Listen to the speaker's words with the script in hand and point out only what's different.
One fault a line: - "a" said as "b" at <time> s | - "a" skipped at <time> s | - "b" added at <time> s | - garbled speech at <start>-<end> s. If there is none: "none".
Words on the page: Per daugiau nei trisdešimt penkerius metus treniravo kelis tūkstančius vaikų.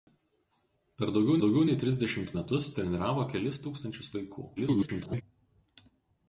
- "daugiau" added at 1.4 s
- "penkerius" skipped at 2.3 s
- garbled speech at 4.6-5.2 s